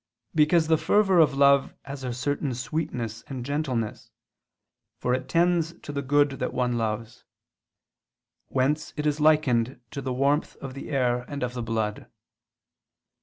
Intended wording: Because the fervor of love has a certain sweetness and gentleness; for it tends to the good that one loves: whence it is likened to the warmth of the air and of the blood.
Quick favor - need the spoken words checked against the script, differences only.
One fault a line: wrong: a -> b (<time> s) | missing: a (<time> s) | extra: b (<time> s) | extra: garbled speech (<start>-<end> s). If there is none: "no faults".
no faults